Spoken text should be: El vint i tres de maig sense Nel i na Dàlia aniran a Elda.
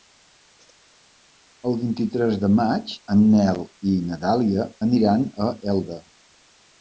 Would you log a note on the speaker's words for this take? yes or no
yes